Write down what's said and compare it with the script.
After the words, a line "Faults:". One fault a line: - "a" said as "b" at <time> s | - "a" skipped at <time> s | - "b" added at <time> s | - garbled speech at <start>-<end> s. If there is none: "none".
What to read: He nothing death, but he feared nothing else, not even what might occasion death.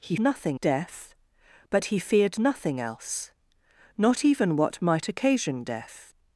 He nothing death, but he feared nothing else, not even what might occasion death.
Faults:
none